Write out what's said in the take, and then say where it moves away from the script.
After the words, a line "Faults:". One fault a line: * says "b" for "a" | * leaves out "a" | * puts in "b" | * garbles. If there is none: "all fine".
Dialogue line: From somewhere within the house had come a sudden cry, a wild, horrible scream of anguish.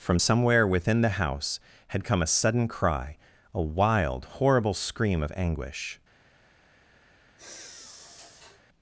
From somewhere within the house had come a sudden cry, a wild, horrible scream of anguish.
Faults:
all fine